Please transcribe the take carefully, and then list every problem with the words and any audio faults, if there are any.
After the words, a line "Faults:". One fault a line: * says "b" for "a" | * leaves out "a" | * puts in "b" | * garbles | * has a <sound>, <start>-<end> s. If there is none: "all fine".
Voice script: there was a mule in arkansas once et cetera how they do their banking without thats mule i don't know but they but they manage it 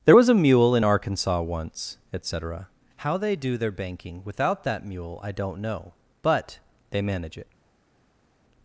there was a mule in arkansas once et cetera how they do their banking without that mule i don't know but they manage it
Faults:
* says "that" for "thats"
* leaves out "but they"